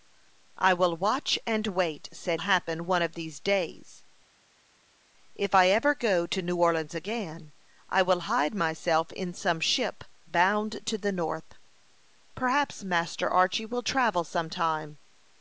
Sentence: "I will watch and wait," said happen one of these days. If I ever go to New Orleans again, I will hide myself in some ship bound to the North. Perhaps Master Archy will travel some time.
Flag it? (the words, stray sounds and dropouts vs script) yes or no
no